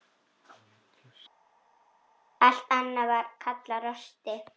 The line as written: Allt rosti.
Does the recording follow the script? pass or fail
fail